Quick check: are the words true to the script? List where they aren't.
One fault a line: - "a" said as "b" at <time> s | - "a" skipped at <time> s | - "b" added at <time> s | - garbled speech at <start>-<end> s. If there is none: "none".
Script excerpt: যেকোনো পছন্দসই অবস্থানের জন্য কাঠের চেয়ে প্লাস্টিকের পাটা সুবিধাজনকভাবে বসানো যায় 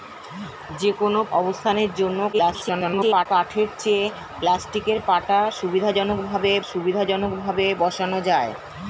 - "পছন্দসই" skipped at 1.2 s
- garbled speech at 2.3-3.3 s
- "সুবিধাজনকভাবে" added at 6.7 s